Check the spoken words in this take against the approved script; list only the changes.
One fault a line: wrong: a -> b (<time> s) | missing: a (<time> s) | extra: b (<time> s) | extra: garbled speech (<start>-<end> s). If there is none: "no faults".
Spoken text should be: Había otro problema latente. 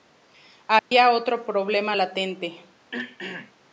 no faults